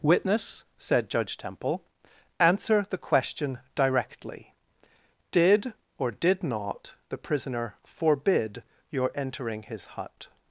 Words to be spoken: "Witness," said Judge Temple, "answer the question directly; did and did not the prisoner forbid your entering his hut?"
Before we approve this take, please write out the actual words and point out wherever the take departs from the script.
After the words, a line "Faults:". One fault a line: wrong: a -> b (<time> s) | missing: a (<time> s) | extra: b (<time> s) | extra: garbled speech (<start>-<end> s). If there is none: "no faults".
"Witness," said Judge Temple, "answer the question directly; did or did not the prisoner forbid your entering his hut?"
Faults:
wrong: and -> or (6.0 s)